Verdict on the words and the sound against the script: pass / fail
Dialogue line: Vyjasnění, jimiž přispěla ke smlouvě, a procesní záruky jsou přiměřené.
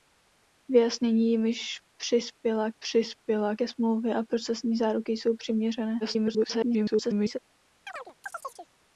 fail